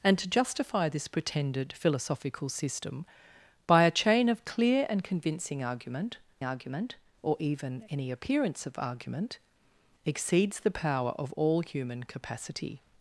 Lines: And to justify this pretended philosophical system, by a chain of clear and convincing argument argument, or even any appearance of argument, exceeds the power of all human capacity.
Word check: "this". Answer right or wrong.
right